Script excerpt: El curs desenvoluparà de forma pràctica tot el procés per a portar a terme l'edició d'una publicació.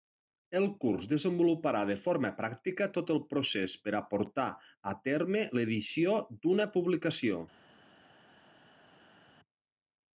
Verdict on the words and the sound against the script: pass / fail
pass